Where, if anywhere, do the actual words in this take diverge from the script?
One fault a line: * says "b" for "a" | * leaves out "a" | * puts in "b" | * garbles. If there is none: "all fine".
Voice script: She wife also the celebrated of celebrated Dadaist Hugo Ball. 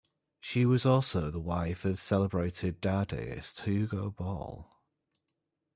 * says "was" for "wife"
* says "wife" for "celebrated"